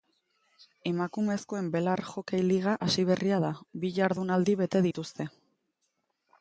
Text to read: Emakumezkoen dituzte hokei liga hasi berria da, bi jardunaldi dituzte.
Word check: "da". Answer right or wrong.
right